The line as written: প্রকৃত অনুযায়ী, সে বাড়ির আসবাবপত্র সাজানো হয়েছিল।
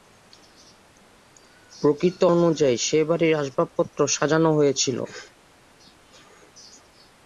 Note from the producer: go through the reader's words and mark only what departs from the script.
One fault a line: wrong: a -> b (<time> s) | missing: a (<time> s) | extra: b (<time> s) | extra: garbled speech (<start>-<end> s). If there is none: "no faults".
no faults